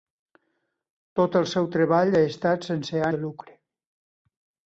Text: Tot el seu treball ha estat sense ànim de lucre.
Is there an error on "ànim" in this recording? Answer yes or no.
yes